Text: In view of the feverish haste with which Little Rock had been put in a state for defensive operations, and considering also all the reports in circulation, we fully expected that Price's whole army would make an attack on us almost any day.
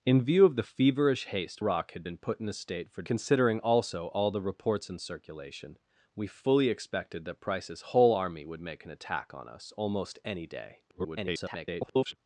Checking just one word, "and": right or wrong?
wrong